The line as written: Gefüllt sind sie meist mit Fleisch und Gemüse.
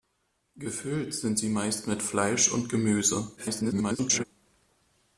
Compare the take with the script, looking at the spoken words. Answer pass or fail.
fail